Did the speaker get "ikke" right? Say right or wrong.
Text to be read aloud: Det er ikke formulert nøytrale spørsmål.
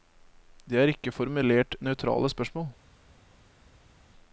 right